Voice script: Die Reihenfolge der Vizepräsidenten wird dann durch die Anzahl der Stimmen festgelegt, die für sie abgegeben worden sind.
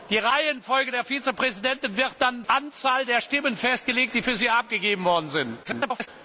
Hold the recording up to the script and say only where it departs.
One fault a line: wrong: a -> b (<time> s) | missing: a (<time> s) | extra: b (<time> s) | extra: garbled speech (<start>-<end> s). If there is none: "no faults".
missing: durch die (2.4 s)
extra: garbled speech (5.6-6.1 s)